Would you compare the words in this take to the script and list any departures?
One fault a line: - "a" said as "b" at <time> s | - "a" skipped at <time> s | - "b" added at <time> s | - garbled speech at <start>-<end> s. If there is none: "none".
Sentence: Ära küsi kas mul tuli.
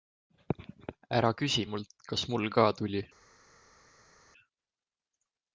- "mult" added at 1.7 s
- "ka" added at 2.6 s